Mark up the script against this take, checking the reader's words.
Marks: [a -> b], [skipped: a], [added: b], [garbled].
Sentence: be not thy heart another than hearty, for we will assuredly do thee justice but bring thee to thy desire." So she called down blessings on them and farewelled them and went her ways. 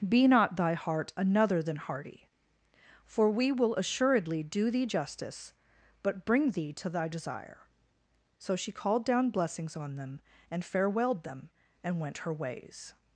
be not thy heart another than hearty, for we will assuredly do thee justice but bring thee to thy desire." So she called down blessings on them and farewelled them and went her ways.